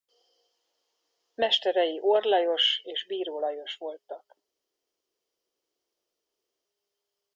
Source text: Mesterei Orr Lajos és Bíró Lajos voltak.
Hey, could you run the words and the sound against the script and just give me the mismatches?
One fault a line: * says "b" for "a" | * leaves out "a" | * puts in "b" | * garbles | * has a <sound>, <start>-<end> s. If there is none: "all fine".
all fine